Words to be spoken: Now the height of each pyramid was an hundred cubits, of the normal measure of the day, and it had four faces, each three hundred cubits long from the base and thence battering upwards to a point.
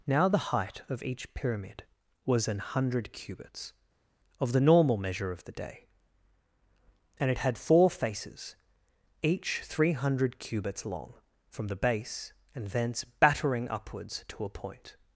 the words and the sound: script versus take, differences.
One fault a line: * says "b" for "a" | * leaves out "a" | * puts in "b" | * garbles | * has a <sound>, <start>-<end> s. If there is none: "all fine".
all fine